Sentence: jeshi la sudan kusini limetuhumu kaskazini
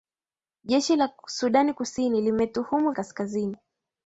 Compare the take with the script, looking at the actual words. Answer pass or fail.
pass